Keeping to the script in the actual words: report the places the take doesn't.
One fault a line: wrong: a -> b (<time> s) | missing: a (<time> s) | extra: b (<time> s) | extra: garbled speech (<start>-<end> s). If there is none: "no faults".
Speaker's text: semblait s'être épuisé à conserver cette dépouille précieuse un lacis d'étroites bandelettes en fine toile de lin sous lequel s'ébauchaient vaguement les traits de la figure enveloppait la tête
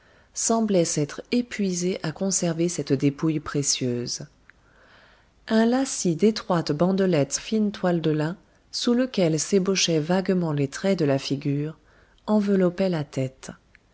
missing: en (7.4 s)